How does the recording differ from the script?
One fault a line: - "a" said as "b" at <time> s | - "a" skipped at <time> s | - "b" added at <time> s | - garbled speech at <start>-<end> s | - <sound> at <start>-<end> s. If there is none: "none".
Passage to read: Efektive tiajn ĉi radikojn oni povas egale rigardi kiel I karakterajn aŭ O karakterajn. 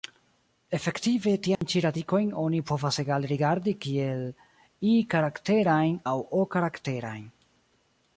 - dropout at 1.6-1.6 s